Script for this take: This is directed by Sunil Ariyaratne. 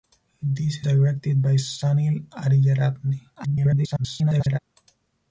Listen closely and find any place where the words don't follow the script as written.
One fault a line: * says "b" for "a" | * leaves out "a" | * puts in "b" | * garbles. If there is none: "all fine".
* leaves out "is"
* garbles